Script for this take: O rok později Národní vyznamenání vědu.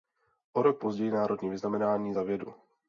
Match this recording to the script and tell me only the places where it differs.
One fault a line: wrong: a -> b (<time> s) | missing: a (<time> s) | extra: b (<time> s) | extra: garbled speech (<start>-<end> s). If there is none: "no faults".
extra: za (2.1 s)